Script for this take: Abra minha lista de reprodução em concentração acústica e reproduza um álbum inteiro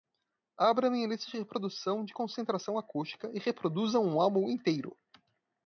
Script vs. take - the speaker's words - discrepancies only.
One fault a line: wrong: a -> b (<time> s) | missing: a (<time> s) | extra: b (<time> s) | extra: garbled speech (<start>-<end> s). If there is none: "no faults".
wrong: em -> de (2.0 s)